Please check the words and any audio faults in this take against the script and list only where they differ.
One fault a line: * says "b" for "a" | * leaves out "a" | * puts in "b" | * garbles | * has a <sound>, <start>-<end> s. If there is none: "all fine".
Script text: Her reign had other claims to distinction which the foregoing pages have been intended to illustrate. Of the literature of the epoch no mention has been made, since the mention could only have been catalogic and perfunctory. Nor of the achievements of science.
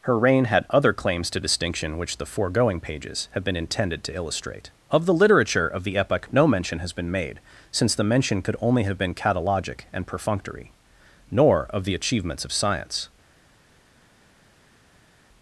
all fine